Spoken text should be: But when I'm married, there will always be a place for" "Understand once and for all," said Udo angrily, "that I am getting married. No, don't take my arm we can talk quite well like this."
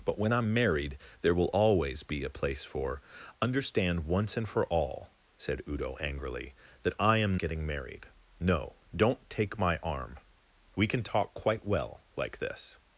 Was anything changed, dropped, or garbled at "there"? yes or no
no